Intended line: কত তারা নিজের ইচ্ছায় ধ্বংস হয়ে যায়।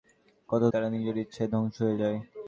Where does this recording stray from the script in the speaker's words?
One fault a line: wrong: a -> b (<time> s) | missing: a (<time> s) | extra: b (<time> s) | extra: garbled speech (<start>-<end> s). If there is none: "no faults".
no faults